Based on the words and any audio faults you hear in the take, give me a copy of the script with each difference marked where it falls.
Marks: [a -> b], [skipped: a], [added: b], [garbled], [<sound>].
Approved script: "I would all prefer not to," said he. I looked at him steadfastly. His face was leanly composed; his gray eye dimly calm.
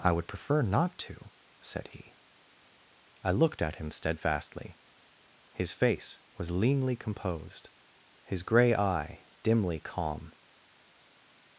"I would [skipped: all] prefer not to," said he. I looked at him steadfastly. His face was leanly composed; his gray eye dimly calm.